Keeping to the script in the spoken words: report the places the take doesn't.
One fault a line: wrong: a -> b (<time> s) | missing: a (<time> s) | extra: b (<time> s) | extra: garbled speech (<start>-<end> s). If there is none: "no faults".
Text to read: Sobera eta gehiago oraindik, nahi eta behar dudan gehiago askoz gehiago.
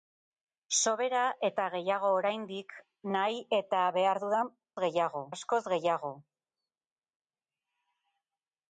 no faults